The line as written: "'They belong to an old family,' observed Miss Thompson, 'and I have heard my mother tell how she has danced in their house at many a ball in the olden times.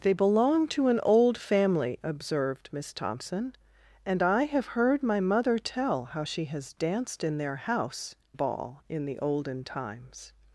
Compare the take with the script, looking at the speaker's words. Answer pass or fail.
fail